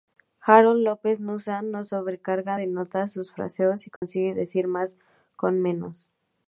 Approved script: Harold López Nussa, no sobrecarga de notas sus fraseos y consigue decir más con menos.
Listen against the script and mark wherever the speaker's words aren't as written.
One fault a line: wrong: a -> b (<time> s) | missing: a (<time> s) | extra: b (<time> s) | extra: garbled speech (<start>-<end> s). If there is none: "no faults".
no faults